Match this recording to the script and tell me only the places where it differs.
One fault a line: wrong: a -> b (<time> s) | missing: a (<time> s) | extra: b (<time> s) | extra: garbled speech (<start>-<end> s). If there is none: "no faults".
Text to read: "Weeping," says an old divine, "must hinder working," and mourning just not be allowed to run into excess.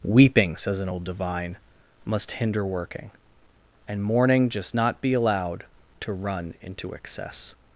no faults